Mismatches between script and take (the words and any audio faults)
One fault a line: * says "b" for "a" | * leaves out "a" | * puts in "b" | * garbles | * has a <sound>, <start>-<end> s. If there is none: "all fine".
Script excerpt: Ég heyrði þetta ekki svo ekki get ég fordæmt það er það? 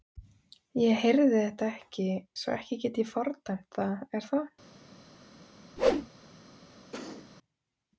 * has a whoosh, 5.8-6.1 s
* has a cough, 6.9-7.3 s